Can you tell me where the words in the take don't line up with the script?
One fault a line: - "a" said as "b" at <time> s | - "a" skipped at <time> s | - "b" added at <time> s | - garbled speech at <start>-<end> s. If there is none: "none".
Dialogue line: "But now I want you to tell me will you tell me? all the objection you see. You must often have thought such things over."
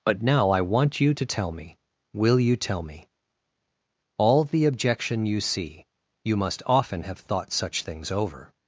none